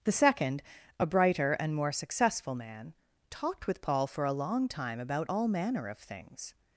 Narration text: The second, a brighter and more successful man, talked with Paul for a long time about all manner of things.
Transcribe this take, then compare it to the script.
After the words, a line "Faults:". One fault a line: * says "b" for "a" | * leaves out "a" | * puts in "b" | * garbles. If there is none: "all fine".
The second, a brighter and more successful man, talked with Paul for a long time about all manner of things.
Faults:
all fine